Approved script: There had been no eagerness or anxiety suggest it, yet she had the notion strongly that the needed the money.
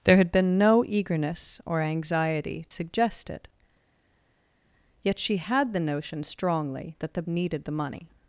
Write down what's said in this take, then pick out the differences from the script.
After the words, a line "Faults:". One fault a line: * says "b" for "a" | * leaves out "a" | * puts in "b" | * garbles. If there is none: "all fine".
There had been no eagerness or anxiety suggest it, yet she had the notion strongly that the needed the money.
Faults:
all fine